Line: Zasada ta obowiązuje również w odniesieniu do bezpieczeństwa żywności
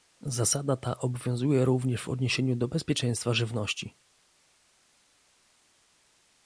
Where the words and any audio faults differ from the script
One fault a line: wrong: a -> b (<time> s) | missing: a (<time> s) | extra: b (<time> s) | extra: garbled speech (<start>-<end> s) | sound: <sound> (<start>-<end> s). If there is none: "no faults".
no faults